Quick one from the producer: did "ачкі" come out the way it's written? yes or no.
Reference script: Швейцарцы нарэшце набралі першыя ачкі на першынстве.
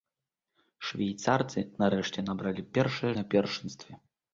no